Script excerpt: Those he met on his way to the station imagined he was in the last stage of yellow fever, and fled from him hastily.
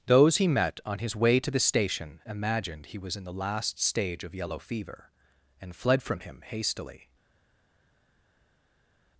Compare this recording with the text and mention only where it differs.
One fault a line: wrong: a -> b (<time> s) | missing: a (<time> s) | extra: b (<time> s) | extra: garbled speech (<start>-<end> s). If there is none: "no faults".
no faults